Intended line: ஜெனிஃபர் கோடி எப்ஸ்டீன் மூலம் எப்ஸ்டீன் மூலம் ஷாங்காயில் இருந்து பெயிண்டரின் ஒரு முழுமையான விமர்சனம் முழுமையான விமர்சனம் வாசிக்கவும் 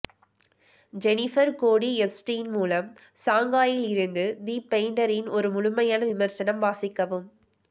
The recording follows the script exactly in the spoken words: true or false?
false